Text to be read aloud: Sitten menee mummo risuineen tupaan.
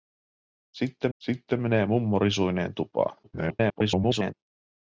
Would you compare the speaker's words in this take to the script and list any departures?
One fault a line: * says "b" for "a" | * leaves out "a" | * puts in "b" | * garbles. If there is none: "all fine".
* puts in "sitten"
* garbles